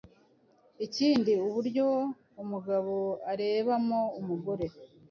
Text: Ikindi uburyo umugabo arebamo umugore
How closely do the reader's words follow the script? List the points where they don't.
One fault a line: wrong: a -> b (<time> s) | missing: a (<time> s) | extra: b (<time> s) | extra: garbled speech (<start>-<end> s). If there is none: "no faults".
no faults